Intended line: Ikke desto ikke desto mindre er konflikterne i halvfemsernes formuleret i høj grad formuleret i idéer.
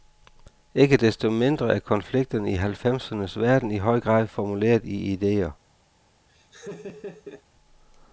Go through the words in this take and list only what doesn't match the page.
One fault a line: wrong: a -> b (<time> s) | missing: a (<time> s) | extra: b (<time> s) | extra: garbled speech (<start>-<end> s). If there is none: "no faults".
missing: ikke desto (1.3 s)
wrong: formuleret -> verden (3.4 s)